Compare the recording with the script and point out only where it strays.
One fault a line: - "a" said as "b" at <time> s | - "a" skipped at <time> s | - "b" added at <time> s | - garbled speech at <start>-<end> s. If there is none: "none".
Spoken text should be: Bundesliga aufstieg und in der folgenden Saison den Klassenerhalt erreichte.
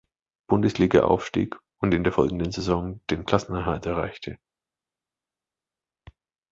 none